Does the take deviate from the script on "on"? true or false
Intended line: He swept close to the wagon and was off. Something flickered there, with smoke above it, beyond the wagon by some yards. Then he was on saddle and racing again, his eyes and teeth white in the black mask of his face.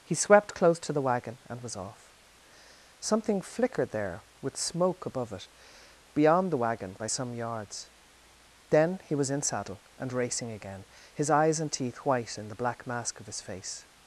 true